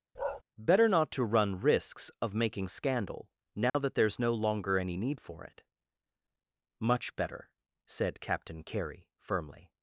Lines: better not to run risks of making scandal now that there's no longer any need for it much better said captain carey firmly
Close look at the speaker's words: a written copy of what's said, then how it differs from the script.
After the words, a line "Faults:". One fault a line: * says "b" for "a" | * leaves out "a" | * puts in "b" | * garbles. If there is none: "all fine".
better not to run risks of making scandal now that there's no longer any need for it much better said captain carey firmly
Faults:
all fine